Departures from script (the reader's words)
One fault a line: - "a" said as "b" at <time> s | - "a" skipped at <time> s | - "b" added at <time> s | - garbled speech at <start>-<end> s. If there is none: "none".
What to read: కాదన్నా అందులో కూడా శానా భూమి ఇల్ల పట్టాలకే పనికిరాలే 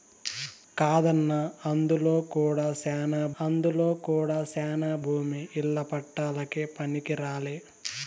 - "అందులో కూడా శానా" added at 3.4 s